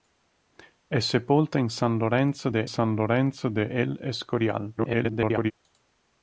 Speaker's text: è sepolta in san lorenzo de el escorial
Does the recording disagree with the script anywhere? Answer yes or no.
yes